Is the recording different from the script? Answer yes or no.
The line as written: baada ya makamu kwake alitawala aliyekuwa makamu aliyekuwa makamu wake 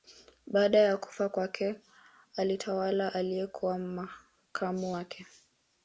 yes